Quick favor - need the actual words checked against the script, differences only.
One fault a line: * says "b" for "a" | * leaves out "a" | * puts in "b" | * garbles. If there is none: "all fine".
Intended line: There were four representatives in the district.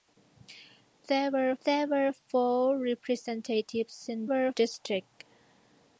* puts in "there were"
* says "were" for "the"